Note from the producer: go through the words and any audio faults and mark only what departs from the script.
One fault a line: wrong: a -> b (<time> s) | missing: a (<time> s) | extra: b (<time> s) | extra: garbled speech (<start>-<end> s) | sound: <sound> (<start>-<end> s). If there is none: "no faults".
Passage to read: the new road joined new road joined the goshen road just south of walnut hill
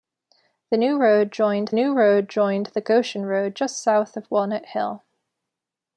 no faults